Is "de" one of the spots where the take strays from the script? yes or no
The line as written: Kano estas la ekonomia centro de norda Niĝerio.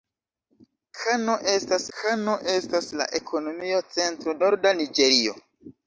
yes